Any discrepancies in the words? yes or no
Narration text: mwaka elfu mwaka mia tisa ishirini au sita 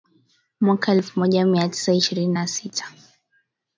yes